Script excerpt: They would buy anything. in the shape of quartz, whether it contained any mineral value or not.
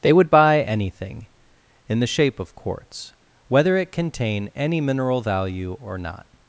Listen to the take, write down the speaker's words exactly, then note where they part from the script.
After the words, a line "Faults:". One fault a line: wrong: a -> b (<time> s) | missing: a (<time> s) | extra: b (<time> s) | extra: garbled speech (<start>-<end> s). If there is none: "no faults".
They would buy anything. in the shape of quartz, whether it contain any mineral value or not.
Faults:
wrong: contained -> contain (3.9 s)